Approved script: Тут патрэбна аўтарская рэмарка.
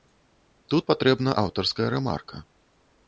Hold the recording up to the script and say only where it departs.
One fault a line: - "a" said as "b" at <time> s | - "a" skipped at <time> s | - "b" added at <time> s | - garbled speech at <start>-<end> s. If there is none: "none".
none